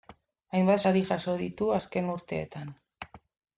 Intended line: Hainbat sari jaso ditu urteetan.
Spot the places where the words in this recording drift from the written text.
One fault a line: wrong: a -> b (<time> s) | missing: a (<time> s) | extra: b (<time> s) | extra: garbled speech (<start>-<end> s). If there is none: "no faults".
extra: azken (1.8 s)